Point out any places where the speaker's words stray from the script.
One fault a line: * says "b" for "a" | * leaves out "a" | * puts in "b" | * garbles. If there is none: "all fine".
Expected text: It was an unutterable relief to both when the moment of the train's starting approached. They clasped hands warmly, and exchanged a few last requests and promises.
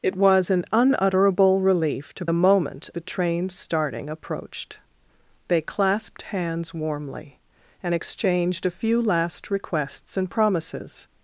* leaves out "both when"
* leaves out "of"